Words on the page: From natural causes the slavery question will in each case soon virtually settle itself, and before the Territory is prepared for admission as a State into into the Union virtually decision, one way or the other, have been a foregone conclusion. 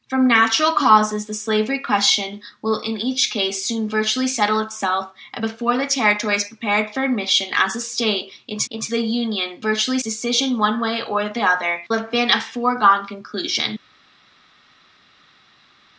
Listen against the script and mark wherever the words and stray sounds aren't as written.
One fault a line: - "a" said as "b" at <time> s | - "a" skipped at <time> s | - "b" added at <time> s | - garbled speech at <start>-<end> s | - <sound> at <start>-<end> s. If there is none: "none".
none